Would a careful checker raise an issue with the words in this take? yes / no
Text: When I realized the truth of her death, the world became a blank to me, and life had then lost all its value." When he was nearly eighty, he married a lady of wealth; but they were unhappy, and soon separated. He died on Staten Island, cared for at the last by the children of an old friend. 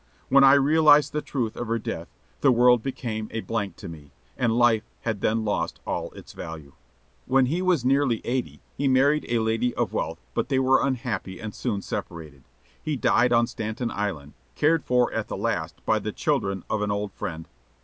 no